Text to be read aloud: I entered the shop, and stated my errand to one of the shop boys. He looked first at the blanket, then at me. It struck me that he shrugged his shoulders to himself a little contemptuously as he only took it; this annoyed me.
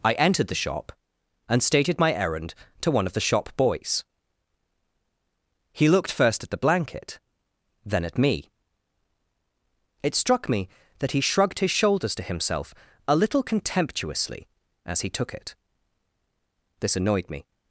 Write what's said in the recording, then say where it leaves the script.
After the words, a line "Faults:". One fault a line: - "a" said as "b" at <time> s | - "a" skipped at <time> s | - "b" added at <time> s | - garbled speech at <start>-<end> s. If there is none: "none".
I entered the shop, and stated my errand to one of the shop boys. He looked first at the blanket, then at me. It struck me that he shrugged his shoulders to himself a little contemptuously as he took it; this annoyed me.
Faults:
- "only" skipped at 15.1 s